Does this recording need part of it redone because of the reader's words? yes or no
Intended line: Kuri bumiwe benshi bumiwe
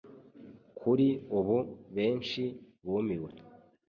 yes